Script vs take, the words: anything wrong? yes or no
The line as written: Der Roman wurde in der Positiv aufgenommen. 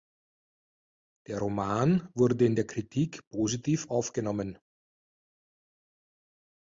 yes